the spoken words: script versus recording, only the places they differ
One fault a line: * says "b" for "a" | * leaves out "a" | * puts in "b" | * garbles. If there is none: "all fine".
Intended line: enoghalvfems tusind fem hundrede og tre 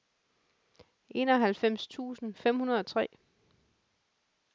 all fine